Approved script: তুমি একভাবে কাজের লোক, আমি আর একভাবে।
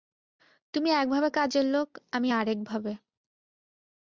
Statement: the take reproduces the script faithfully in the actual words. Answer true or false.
true